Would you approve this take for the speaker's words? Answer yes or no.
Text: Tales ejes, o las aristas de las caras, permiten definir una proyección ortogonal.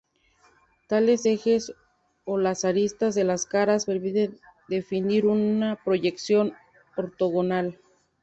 yes